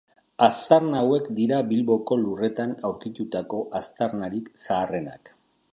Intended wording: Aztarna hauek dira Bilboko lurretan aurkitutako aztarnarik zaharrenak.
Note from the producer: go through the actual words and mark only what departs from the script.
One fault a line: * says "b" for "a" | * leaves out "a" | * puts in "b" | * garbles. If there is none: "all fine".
all fine